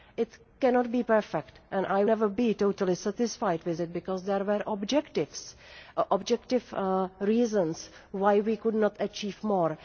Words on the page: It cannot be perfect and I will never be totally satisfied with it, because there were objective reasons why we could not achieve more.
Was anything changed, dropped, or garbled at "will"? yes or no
yes